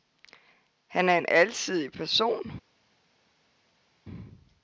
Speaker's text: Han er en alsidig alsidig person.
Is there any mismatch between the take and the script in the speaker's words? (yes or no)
yes